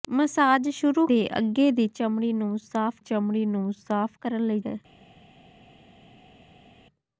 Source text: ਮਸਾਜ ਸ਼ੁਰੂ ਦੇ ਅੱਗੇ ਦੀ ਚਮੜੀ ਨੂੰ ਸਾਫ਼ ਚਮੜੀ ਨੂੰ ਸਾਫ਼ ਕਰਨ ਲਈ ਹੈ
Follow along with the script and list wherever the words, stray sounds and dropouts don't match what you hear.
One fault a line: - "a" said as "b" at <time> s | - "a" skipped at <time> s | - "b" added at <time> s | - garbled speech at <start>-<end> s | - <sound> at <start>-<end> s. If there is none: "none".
none